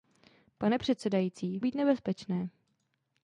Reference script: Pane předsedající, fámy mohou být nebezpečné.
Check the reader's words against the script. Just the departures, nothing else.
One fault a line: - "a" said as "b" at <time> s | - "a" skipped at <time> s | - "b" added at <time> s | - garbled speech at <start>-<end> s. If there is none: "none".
- "fámy mohou" skipped at 1.6 s